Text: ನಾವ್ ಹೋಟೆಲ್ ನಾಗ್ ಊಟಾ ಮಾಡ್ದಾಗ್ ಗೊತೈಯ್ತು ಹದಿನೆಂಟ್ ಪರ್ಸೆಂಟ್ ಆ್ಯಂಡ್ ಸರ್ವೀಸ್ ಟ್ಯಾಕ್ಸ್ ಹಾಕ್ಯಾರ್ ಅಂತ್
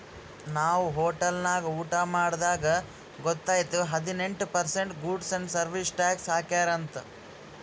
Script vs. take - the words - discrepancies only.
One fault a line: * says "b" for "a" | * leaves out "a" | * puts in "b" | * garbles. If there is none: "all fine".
* puts in "ಗೂಡ್ಸ್"